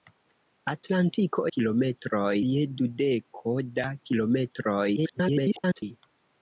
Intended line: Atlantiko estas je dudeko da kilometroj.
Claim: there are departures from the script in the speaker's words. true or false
true